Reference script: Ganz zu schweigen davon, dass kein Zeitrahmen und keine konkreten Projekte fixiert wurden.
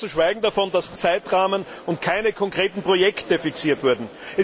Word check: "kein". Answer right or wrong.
wrong